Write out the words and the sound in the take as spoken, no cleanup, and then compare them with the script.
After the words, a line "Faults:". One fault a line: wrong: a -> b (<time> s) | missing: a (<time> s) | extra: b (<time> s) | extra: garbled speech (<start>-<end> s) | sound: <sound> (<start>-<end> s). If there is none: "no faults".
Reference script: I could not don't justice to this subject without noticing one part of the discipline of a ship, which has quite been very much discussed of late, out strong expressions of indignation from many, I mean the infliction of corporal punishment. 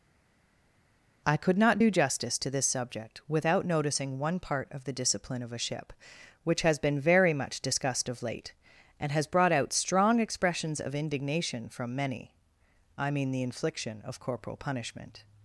I could not do justice to this subject without noticing one part of the discipline of a ship, which has been very much discussed of late, and has brought out strong expressions of indignation from many, I mean the infliction of corporal punishment.
Faults:
wrong: don't -> do (1.8 s)
missing: quite (6.8 s)
extra: and has brought (9.0 s)